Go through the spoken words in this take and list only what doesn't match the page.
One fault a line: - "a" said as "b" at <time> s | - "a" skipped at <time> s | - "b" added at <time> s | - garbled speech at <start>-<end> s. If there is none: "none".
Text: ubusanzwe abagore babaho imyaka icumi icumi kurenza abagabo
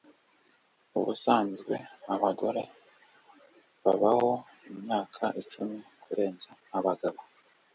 - "icumi" skipped at 5.8 s